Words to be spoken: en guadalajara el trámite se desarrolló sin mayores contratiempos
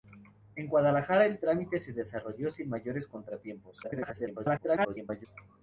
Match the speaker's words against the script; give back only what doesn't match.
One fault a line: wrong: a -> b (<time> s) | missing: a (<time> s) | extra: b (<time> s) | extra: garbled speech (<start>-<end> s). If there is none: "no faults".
extra: garbled speech (3.8-5.3 s)